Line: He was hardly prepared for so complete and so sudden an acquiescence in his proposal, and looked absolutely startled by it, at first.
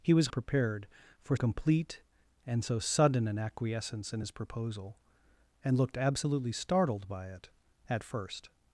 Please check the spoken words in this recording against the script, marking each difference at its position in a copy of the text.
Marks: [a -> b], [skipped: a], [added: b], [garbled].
He was [skipped: hardly] prepared for [skipped: so] complete and so sudden an acquiescence in his proposal, and looked absolutely startled by it, at first.